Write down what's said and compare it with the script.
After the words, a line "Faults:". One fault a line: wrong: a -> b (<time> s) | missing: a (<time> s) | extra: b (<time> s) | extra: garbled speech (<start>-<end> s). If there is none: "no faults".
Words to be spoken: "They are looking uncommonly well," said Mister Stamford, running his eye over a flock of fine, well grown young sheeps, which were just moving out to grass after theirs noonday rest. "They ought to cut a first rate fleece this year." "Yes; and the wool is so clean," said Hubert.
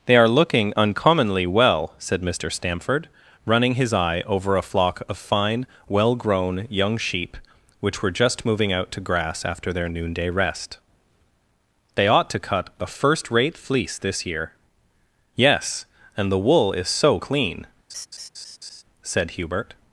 "They are looking uncommonly well," said Mister Stamford, running his eye over a flock of fine, well grown young sheep, which were just moving out to grass after their noonday rest. "They ought to cut a first rate fleece this year." "Yes; and the wool is so clean," said Hubert.
Faults:
wrong: sheeps -> sheep (7.0 s)
wrong: theirs -> their (9.7 s)